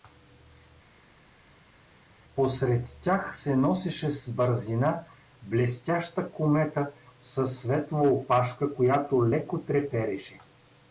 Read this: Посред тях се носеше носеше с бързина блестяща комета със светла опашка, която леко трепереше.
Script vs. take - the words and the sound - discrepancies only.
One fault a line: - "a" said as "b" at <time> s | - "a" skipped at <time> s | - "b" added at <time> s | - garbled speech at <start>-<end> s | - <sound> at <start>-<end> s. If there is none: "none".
- "носеше" skipped at 4.1 s